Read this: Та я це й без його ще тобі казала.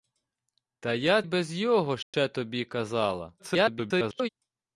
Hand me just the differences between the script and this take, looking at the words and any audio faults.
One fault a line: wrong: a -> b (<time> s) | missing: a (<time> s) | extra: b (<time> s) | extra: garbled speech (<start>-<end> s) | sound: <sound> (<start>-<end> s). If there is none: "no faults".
missing: це (1.2 s)
sound: dropout (2.0-2.1 s)
extra: garbled speech (3.4-4.3 s)